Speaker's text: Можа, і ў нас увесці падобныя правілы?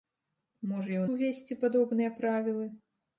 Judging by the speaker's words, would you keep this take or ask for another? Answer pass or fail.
fail